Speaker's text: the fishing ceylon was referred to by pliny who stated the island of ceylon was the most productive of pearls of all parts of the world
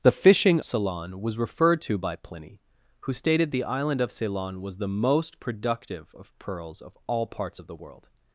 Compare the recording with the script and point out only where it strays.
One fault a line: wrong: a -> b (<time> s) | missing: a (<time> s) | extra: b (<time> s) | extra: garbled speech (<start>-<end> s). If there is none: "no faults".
no faults